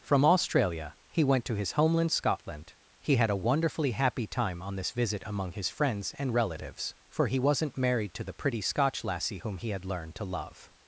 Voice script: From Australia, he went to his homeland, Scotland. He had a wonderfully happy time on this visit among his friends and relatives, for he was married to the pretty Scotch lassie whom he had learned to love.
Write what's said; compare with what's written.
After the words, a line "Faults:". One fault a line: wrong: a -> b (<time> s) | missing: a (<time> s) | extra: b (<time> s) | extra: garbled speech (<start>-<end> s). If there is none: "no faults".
From Australia, he went to his homeland, Scotland. He had a wonderfully happy time on this visit among his friends and relatives, for he wasn't married to the pretty Scotch lassie whom he had learned to love.
Faults:
wrong: was -> wasn't (7.4 s)